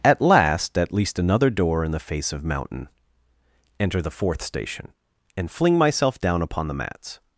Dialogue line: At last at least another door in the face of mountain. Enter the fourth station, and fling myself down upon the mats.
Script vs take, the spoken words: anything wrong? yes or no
no